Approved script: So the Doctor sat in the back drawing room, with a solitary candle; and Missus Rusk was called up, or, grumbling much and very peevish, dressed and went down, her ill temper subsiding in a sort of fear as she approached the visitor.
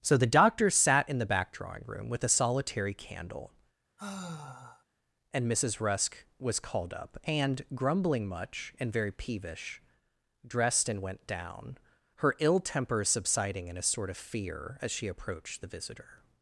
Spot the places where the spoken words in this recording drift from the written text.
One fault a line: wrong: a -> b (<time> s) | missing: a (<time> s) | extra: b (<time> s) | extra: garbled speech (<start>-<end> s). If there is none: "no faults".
wrong: or -> and (7.2 s)